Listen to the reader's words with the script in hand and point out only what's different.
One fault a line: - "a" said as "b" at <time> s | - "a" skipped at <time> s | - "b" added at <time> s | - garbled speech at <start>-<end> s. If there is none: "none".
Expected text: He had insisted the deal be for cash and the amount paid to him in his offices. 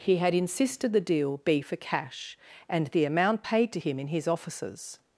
none